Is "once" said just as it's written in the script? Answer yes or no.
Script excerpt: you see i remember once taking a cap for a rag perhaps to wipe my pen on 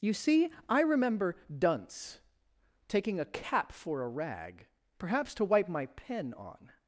no